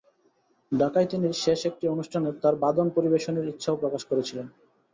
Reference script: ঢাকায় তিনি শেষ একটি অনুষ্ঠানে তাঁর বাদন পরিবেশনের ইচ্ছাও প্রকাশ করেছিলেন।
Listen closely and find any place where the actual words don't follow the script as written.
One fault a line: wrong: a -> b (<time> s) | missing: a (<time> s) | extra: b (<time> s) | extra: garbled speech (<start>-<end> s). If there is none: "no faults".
no faults